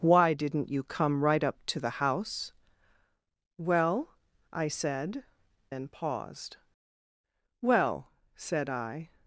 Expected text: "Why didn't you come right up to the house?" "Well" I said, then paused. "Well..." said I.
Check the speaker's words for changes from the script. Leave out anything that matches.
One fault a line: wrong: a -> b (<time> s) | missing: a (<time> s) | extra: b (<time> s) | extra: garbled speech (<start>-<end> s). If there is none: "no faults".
no faults